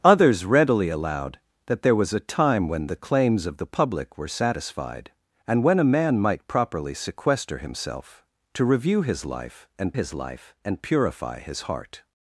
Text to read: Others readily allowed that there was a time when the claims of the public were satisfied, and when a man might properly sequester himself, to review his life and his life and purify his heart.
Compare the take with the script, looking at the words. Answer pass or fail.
pass